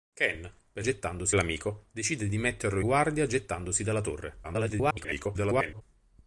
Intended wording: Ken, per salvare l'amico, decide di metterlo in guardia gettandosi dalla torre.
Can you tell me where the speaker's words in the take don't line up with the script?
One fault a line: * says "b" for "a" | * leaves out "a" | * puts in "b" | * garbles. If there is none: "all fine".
* says "gettandosi" for "salvare"
* leaves out "in"
* garbles